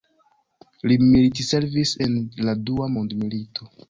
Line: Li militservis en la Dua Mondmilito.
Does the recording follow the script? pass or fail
pass